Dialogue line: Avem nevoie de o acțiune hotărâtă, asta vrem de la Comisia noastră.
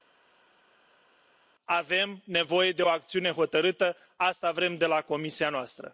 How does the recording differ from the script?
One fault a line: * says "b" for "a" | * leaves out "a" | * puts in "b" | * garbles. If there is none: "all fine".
all fine